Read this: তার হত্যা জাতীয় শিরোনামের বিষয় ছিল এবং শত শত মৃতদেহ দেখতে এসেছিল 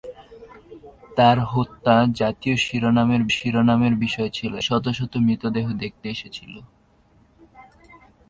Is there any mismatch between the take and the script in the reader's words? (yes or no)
yes